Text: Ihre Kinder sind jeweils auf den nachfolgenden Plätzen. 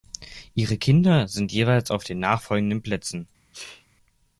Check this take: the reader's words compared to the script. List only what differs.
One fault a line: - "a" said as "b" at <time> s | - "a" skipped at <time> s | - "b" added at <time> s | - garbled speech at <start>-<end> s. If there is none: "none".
none